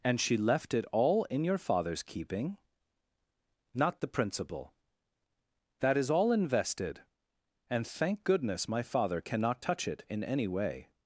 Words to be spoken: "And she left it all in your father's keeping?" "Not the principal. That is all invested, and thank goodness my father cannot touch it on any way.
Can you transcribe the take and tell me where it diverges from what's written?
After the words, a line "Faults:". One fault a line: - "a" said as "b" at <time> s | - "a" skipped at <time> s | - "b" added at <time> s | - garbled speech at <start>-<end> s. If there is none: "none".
"And she left it all in your father's keeping?" "Not the principal. That is all invested, and thank goodness my father cannot touch it in any way.
Faults:
- "on" said as "in" at 10.1 s